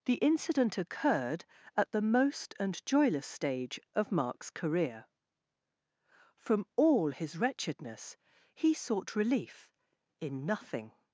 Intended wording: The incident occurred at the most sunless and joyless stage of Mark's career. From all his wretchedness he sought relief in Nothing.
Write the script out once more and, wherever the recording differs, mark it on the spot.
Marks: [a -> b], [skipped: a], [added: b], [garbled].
The incident occurred at the most [skipped: sunless] and joyless stage of Mark's career. From all his wretchedness he sought relief in Nothing.